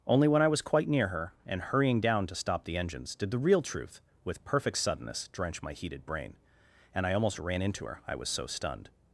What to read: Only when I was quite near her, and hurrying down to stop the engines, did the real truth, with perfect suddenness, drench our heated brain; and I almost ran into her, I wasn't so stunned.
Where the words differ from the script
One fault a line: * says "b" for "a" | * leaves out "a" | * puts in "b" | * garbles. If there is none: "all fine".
* says "my" for "our"
* says "was" for "wasn't"